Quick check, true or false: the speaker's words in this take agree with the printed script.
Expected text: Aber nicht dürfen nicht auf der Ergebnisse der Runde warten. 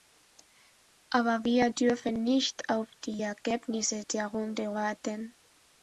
false